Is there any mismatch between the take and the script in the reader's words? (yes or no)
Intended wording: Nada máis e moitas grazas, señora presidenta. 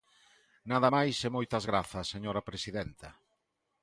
no